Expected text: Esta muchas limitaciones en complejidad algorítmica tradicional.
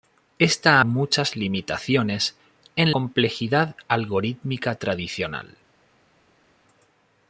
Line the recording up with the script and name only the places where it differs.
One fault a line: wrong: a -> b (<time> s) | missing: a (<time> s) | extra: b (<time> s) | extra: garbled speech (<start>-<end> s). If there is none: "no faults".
no faults